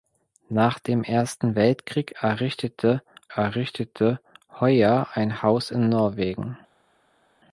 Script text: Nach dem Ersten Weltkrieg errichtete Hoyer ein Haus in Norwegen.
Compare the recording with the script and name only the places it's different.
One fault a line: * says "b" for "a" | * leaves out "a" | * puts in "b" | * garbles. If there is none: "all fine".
* puts in "errichtete"